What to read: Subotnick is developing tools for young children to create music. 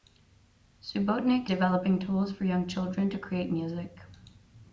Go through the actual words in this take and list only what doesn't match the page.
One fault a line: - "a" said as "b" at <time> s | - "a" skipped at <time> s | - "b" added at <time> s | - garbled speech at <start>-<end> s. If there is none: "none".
- "is" skipped at 1.5 s